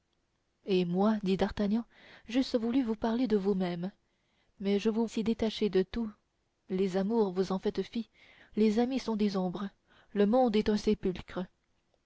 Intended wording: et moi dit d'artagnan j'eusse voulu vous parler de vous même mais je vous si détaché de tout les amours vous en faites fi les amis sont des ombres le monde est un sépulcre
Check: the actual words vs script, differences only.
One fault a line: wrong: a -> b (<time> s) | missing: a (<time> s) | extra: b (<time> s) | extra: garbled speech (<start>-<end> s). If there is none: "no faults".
no faults